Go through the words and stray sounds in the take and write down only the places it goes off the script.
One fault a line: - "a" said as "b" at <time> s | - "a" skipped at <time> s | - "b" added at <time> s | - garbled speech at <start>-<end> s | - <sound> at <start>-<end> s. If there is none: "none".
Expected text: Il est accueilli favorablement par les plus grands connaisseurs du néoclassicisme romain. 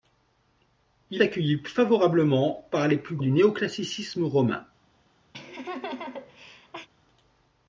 - "est" skipped at 1.2 s
- "grands connaisseurs" skipped at 3.2 s
- laugh at 5.3-6.9 s